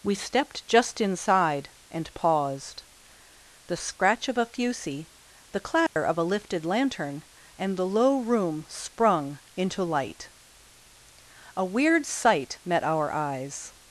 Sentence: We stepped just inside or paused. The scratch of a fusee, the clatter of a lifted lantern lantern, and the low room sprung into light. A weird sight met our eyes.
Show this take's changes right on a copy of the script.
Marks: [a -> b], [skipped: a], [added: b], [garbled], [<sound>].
We stepped just inside [or -> and] paused. The scratch of a fusee, the clatter [dropout] of a lifted lantern [skipped: lantern,] and the low room sprung into light. A weird sight met our eyes.